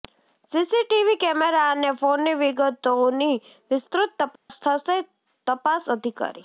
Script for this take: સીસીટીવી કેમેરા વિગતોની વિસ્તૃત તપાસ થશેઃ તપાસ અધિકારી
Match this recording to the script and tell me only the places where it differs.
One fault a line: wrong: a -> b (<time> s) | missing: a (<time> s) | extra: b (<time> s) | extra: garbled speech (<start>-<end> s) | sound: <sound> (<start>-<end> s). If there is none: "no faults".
extra: અને ફોનની (1.7 s)
sound: dropout (4.4-4.5 s)